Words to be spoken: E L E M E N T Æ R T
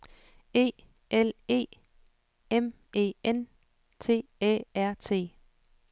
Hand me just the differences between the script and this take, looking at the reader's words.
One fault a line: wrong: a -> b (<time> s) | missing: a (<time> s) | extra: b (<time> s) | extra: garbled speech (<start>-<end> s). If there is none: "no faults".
no faults